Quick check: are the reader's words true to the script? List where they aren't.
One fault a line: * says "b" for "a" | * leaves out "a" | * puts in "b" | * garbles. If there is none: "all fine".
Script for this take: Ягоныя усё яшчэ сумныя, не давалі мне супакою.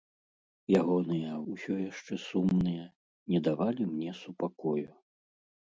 all fine